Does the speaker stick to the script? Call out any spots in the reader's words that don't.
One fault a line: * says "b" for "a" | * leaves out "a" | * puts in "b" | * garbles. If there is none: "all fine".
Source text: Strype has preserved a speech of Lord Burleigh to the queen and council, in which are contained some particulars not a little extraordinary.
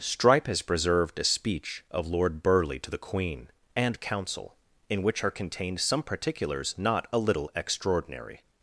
all fine